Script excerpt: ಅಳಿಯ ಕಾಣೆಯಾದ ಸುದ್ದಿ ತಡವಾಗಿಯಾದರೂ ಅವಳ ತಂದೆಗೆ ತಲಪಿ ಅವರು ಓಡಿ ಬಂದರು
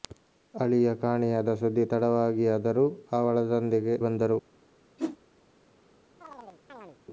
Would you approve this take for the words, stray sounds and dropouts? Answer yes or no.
no